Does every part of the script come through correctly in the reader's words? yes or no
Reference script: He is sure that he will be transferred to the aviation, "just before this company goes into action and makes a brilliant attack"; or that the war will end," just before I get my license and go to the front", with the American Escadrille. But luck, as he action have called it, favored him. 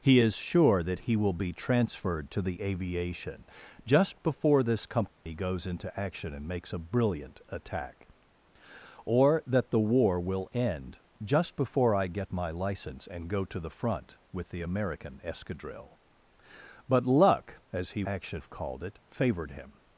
yes